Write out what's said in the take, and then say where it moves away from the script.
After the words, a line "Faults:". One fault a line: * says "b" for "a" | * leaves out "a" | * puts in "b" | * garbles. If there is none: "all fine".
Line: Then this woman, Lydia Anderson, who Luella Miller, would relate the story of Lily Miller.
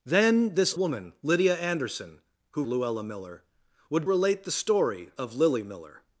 Then this woman, Lydia Anderson, who Luella Miller, would relate the story of Lily Miller.
Faults:
all fine